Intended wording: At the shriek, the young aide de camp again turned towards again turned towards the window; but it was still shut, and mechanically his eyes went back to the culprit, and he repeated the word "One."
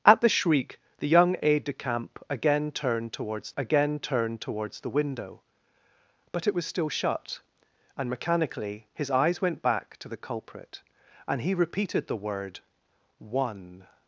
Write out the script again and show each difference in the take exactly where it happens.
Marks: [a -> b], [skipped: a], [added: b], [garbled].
At the shriek, the young aide de camp again turned towards again turned towards the window; but it was still shut, and mechanically his eyes went back to the culprit, and he repeated the word "One."